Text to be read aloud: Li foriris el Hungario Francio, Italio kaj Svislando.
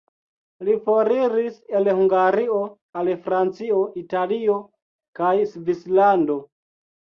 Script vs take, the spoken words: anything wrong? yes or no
yes